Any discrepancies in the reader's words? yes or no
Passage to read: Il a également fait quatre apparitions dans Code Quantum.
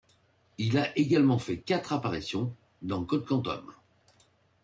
no